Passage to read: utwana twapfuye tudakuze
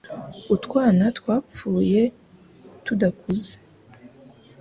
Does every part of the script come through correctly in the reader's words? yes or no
yes